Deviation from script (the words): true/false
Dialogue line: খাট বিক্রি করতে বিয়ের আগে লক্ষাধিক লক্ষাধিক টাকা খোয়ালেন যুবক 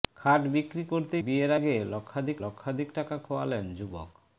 false